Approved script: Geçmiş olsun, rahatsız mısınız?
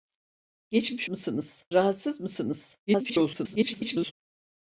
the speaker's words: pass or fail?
fail